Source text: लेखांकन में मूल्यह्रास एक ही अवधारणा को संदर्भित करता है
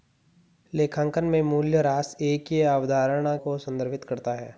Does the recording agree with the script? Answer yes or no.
yes